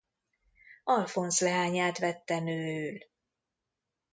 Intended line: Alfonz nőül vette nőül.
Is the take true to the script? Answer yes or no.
no